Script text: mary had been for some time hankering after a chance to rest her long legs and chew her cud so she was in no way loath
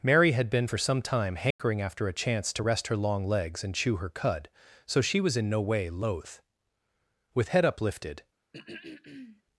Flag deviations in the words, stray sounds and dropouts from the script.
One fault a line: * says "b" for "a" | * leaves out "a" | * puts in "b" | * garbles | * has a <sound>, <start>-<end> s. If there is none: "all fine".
* has a dropout, 1.5-1.6 s
* puts in "with head uplifted"
* has a throat clearing, 8.5-9.4 s